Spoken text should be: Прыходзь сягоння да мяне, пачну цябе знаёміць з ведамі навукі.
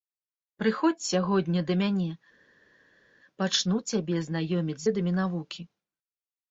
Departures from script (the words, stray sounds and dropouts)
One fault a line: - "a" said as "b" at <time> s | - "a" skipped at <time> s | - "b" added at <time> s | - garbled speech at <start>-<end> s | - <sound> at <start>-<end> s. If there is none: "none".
- "з" skipped at 4.8 s